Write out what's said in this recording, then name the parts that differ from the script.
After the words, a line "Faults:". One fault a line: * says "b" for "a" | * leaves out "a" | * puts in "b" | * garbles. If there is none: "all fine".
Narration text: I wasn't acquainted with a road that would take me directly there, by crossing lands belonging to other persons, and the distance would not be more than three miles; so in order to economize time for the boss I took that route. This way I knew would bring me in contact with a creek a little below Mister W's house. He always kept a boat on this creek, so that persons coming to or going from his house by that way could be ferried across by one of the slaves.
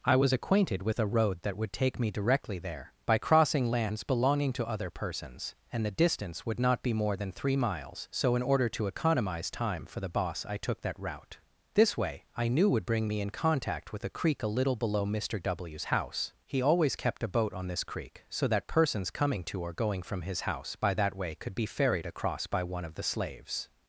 I was acquainted with a road that would take me directly there, by crossing lands belonging to other persons, and the distance would not be more than three miles; so in order to economize time for the boss I took that route. This way I knew would bring me in contact with a creek a little below Mister W's house. He always kept a boat on this creek, so that persons coming to or going from his house by that way could be ferried across by one of the slaves.
Faults:
* says "was" for "wasn't"